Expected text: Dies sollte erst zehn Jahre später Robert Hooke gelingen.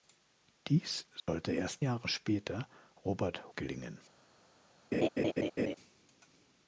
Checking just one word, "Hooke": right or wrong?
wrong